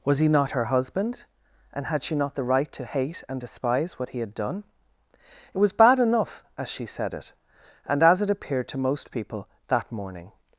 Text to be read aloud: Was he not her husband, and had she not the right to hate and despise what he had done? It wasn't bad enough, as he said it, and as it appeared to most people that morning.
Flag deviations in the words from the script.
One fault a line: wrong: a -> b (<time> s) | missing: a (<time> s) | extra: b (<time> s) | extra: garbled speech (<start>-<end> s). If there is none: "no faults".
wrong: wasn't -> was (5.6 s)
wrong: he -> she (6.7 s)